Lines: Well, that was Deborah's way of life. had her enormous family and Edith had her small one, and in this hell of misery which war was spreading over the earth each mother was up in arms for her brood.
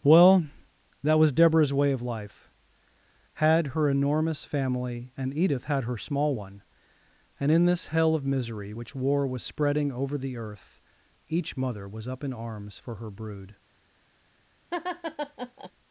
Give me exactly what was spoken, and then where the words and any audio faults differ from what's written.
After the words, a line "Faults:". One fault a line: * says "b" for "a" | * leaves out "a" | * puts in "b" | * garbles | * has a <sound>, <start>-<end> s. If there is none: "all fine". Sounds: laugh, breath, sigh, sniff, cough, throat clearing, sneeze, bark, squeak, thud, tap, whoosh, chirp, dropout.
Well, that was Deborah's way of life. had her enormous family and Edith had her small one, and in this hell of misery which war was spreading over the earth each mother was up in arms for her brood.
Faults:
* has a laugh, 14.7-15.7 s